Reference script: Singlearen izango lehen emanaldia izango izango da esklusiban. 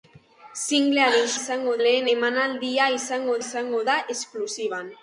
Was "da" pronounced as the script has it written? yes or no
yes